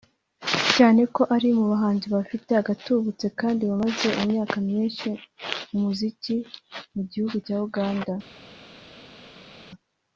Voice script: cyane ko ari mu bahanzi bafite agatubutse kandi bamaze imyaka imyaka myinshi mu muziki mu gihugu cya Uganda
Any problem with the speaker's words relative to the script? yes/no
yes